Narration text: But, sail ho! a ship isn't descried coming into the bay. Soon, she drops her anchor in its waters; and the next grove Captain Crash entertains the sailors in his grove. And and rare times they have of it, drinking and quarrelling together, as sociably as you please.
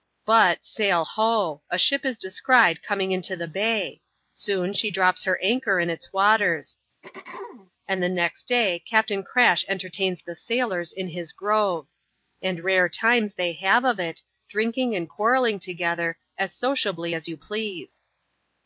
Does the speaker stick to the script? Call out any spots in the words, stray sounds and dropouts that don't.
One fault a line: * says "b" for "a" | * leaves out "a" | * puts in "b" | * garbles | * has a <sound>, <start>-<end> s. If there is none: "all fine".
* says "is" for "isn't"
* has a throat clearing, 7.0-7.7 s
* says "day" for "grove"
* leaves out "and"